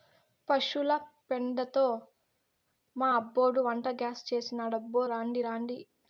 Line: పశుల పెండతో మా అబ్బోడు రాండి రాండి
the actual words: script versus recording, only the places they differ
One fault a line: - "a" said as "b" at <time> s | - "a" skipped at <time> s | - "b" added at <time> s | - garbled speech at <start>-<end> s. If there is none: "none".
- "వంటగ్యాస్ చేసినాడబ్బో" added at 3.6 s